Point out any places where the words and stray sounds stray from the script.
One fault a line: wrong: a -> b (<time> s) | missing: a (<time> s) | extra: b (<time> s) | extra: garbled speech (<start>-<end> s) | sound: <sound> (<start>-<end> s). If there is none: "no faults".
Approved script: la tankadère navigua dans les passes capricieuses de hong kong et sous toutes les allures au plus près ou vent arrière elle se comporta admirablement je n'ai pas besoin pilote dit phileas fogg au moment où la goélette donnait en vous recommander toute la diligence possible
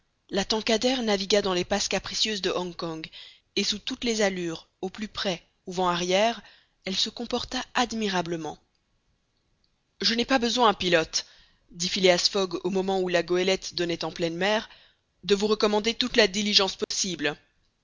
extra: pleine mer de (14.1 s)
sound: dropout (16.8-16.9 s)